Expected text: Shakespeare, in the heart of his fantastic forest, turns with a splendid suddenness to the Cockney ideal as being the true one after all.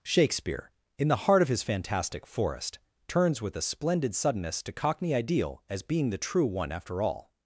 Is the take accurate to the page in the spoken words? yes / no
no